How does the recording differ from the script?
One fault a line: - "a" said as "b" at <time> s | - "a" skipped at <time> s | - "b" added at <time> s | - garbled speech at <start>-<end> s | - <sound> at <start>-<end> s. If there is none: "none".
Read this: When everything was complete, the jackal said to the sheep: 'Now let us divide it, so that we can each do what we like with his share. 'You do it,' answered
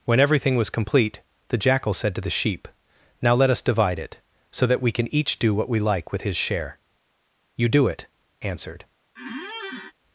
- squeak at 9.2-9.9 s